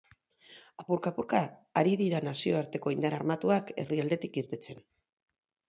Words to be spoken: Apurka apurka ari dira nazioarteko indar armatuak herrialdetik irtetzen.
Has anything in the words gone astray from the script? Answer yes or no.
no